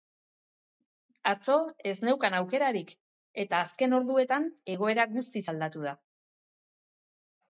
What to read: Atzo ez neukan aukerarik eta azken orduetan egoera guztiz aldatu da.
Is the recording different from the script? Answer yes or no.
no